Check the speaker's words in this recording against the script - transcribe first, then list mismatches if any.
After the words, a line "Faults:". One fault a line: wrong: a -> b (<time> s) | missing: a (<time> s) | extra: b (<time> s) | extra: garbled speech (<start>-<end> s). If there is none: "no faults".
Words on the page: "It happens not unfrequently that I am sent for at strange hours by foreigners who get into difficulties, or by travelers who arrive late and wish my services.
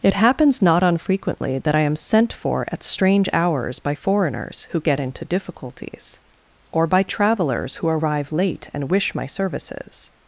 "It happens not unfrequently that I am sent for at strange hours by foreigners who get into difficulties, or by travelers who arrive late and wish my services.
Faults:
no faults